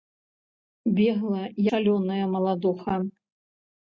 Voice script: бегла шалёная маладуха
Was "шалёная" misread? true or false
false